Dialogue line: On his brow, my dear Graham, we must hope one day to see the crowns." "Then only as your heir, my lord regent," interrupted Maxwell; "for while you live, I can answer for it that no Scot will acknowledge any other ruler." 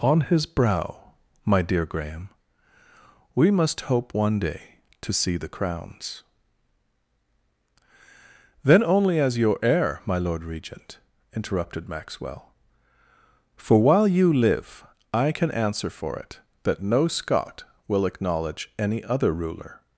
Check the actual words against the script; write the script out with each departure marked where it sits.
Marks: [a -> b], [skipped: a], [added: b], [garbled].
On his brow, my dear Graham, we must hope one day to see the crowns." "Then only as your heir, my lord regent," interrupted Maxwell; "for while you live, I can answer for it that no Scot will acknowledge any other ruler."